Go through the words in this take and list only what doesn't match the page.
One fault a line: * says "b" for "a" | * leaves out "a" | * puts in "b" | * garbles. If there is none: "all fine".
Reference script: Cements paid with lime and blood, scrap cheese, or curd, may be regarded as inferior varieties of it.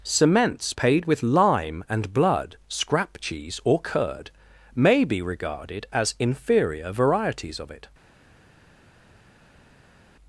all fine